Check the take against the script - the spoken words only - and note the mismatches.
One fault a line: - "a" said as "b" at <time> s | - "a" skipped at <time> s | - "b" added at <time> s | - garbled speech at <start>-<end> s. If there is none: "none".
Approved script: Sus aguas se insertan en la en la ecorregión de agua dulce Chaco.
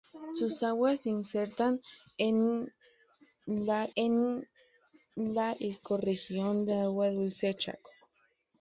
none